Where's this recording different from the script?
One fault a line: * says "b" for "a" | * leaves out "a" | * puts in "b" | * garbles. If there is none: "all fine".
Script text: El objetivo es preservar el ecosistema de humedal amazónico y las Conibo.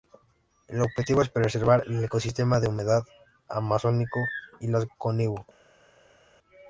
all fine